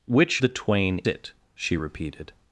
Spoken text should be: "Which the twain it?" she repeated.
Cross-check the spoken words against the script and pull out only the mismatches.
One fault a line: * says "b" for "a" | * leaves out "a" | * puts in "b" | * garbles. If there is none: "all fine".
all fine